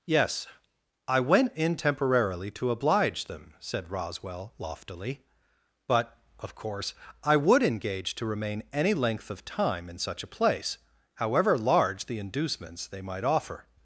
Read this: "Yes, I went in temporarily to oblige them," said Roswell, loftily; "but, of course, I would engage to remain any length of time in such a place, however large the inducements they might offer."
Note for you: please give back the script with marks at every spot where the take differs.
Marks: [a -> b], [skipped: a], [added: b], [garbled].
"Yes, I went in temporarily to oblige them," said Roswell, loftily; "but, of course, I would engage to remain any length of time in such a place, however large the inducements they might offer."